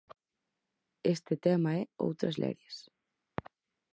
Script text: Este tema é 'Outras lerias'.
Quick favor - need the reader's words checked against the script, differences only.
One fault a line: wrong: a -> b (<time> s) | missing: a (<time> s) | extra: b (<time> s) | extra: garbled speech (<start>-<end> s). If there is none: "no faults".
no faults